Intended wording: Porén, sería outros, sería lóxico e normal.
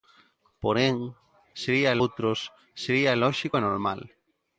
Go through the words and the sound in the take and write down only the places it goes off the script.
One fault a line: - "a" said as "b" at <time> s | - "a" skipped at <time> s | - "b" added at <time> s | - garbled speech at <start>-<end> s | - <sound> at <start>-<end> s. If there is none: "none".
none